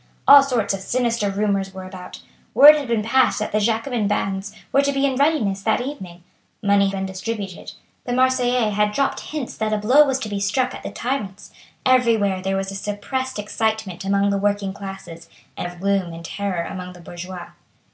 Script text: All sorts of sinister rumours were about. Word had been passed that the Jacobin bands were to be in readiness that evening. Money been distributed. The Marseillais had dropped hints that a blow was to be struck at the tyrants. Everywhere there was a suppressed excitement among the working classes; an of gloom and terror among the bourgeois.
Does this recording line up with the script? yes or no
yes